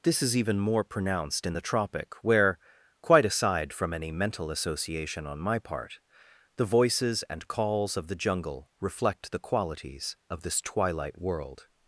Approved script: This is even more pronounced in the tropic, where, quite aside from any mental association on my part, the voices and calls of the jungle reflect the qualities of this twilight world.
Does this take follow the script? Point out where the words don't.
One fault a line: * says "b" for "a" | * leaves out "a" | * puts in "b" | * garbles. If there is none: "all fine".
all fine